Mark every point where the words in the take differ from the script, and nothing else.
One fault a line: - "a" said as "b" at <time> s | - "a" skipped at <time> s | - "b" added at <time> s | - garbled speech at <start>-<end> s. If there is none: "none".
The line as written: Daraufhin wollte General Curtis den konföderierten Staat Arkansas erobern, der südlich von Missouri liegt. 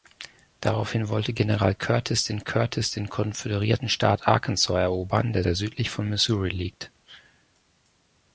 - "Curtis den" added at 2.4 s
- "der" added at 5.4 s